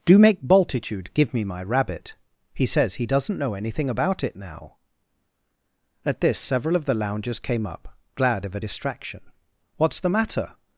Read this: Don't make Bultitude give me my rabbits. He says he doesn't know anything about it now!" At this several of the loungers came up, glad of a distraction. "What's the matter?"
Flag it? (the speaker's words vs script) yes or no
yes